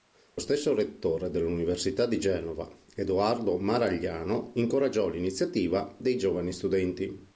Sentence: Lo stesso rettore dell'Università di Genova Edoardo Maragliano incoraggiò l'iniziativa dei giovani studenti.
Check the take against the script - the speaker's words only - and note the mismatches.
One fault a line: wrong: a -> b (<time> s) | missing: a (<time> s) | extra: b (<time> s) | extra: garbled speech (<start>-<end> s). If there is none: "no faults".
no faults